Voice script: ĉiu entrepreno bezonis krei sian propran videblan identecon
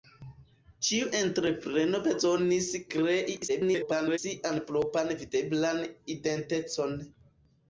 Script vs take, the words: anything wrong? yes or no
yes